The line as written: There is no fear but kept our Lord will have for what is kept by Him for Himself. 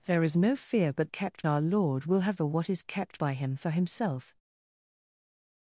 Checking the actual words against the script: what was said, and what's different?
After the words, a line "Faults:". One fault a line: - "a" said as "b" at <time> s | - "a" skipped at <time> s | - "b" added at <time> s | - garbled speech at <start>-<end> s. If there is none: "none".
There is no fear but kept our Lord will have for what is kept by Him for Himself.
Faults:
none